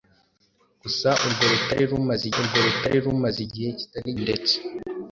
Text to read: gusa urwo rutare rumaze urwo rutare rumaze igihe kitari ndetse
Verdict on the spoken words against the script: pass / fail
pass